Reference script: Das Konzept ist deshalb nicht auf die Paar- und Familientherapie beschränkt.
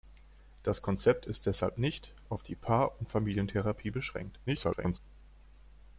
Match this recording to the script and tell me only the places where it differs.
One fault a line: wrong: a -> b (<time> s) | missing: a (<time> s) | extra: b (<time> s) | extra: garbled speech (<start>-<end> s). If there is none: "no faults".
extra: garbled speech (4.5-5.0 s)